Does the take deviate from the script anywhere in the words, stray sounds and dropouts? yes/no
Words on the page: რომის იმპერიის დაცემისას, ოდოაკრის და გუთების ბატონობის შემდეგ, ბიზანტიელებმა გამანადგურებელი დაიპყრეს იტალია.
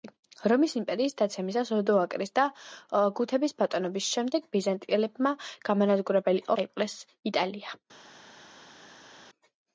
no